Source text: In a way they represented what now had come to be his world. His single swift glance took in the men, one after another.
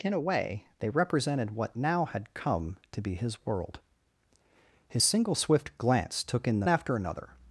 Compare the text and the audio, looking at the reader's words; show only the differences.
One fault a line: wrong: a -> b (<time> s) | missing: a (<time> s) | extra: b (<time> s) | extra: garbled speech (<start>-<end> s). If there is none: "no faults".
missing: men one (6.7 s)